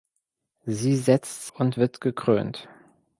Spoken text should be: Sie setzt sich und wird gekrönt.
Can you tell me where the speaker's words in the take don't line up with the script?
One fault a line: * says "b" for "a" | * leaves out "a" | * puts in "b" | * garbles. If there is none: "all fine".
* leaves out "sich"